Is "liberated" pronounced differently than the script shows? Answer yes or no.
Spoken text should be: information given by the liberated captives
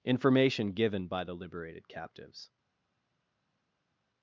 no